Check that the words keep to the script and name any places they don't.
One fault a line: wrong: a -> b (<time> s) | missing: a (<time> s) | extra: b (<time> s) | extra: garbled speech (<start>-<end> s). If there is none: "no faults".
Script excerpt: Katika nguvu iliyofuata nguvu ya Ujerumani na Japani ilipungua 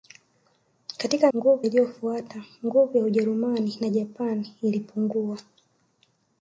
no faults